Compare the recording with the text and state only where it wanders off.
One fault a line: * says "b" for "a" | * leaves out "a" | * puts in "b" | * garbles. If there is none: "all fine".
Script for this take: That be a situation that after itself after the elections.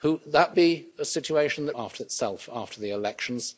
all fine